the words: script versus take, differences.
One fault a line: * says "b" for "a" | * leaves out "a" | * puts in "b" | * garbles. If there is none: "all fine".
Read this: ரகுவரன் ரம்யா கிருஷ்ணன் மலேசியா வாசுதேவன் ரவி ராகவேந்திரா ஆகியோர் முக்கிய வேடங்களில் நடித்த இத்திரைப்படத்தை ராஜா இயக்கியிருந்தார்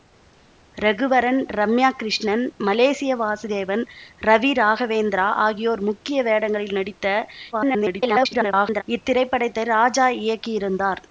* garbles